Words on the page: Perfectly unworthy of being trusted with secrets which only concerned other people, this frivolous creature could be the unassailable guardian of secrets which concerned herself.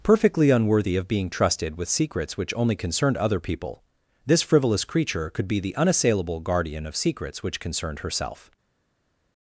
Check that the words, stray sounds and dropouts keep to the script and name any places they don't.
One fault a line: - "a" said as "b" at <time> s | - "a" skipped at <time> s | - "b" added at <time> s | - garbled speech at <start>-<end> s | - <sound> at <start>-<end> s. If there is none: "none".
none